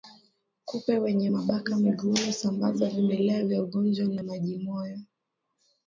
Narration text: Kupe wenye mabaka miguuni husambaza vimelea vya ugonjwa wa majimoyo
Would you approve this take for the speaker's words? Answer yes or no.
yes